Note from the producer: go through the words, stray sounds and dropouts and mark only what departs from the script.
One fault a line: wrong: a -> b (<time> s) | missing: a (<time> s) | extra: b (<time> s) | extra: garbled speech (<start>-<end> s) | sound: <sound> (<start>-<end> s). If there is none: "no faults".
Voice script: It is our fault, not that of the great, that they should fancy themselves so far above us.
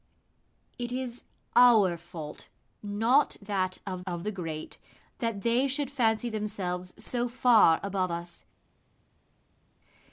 extra: of (4.1 s)